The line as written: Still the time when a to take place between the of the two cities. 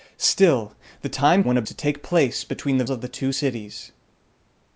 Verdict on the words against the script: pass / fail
pass